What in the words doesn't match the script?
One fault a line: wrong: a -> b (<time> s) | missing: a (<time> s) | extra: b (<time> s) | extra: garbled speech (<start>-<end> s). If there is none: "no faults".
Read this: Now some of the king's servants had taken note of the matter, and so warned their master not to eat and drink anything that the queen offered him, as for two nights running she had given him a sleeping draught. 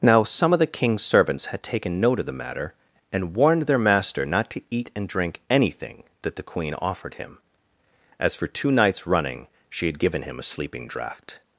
missing: so (3.3 s)